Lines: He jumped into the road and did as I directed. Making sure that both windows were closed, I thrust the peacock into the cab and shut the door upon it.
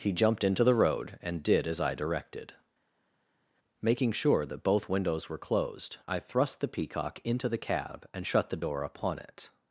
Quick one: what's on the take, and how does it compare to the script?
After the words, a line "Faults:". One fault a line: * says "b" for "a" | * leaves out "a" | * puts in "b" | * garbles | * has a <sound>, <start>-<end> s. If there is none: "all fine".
He jumped into the road and did as I directed. Making sure that both windows were closed, I thrust the peacock into the cab and shut the door upon it.
Faults:
all fine